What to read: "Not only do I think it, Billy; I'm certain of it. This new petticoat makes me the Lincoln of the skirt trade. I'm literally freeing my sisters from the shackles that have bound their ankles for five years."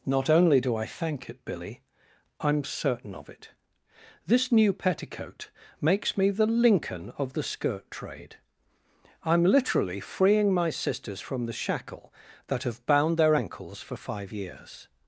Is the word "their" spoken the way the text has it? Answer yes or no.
yes